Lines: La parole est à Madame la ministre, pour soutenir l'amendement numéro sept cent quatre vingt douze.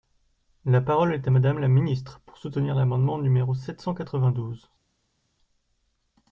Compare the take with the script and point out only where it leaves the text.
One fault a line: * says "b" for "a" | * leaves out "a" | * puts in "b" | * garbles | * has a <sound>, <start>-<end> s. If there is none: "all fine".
all fine